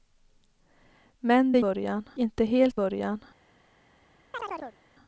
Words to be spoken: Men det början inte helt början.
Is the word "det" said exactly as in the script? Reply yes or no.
yes